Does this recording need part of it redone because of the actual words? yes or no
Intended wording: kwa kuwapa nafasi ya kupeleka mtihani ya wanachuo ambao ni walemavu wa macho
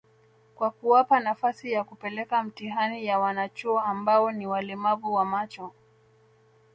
no